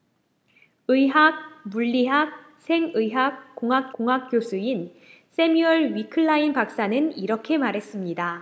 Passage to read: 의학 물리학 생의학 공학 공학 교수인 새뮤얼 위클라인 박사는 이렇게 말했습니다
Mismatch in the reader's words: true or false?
false